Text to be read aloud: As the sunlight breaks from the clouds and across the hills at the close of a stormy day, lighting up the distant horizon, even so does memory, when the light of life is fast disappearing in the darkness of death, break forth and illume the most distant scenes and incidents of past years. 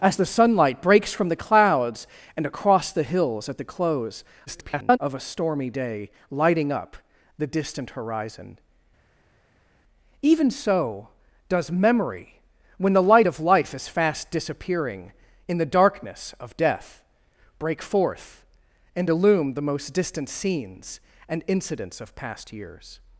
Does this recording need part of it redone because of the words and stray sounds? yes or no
yes